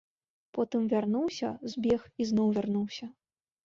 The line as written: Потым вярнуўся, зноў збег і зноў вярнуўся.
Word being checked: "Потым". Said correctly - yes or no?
yes